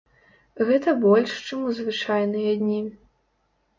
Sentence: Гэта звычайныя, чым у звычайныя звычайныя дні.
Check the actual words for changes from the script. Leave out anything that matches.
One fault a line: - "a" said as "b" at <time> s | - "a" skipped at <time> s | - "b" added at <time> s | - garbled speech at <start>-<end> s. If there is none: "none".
- "звычайныя" said as "больш" at 1.0 s
- "звычайныя" skipped at 2.6 s